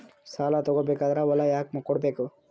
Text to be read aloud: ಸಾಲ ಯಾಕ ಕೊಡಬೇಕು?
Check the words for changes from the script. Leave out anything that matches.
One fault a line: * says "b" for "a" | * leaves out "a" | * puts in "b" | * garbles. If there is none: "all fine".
* puts in "ತಗೋ ಬೇಕಾದ್ರೆ ಹೊಲ"